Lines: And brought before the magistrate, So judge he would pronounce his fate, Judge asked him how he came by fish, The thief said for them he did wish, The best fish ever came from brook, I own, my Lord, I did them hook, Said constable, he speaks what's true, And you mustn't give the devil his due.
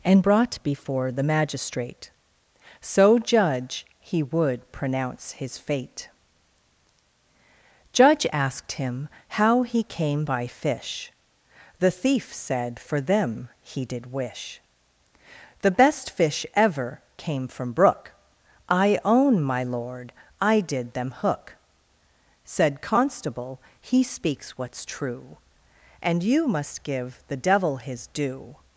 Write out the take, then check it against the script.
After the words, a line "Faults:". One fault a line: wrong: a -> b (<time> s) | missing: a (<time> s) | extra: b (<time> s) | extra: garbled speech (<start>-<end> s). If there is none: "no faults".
And brought before the magistrate, So judge he would pronounce his fate, Judge asked him how he came by fish, The thief said for them he did wish, The best fish ever came from brook, I own, my Lord, I did them hook, Said constable, he speaks what's true, And you must give the devil his due.
Faults:
wrong: mustn't -> must (26.5 s)